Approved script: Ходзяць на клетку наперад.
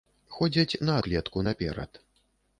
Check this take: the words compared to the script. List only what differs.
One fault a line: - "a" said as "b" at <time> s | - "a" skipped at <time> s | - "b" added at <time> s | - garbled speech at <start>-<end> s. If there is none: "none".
none